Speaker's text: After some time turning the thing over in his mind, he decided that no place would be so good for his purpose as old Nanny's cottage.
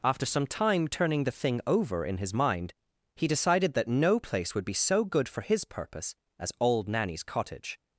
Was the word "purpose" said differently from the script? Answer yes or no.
no